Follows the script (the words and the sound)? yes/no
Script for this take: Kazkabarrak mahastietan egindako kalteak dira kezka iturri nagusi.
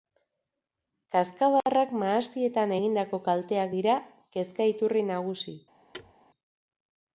no